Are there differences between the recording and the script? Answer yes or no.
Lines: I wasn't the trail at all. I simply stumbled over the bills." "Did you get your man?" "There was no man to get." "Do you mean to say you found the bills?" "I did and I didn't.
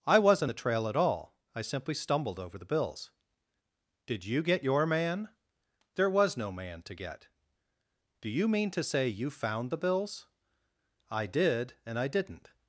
no